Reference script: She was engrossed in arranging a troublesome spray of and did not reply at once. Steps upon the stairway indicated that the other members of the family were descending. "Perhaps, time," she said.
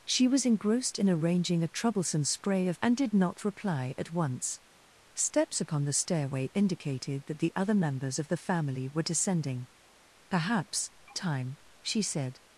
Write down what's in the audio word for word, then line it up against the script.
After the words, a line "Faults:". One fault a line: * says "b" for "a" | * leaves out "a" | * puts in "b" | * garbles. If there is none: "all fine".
She was engrossed in arranging a troublesome spray of and did not reply at once. Steps upon the stairway indicated that the other members of the family were descending. "Perhaps, time," she said.
Faults:
all fine